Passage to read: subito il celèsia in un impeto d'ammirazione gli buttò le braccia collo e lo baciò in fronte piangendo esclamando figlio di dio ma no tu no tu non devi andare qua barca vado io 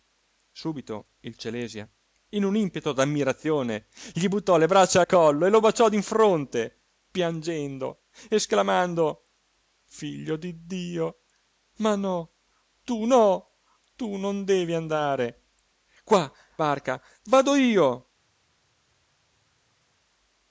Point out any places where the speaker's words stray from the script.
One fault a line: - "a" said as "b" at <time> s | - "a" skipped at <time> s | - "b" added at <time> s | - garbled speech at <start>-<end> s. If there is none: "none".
none